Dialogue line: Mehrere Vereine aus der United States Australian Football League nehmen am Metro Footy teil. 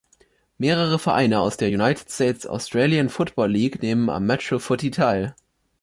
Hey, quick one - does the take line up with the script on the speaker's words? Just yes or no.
yes